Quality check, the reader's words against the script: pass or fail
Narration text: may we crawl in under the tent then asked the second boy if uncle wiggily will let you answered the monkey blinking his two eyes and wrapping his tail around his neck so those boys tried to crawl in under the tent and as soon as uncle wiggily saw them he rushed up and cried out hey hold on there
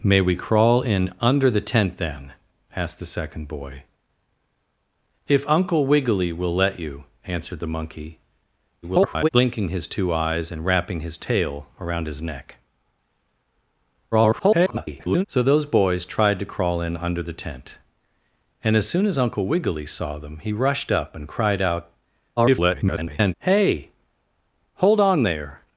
fail